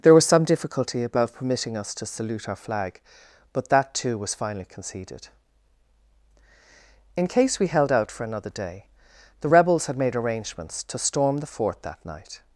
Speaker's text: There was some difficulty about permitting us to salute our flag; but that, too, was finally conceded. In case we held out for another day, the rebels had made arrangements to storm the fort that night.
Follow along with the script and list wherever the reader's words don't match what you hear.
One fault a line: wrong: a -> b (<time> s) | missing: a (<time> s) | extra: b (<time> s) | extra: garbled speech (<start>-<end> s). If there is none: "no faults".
no faults